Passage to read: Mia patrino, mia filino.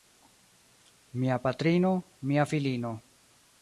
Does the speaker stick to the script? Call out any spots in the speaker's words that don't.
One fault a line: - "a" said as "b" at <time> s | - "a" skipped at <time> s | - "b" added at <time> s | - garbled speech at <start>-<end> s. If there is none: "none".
none